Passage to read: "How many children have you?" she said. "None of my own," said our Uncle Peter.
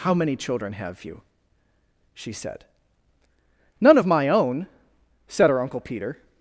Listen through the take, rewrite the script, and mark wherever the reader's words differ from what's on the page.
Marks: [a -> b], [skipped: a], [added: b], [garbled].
"How many children have you?" she said. "None of my own," said [our -> her] Uncle Peter.